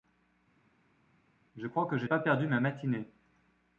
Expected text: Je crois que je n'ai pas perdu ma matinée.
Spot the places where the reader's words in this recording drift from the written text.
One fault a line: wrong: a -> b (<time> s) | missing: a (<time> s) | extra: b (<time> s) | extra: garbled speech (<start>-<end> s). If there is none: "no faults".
missing: n'ai (2.1 s)